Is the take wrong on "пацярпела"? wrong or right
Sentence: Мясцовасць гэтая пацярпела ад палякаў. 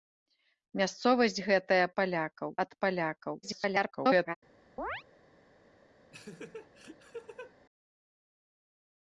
wrong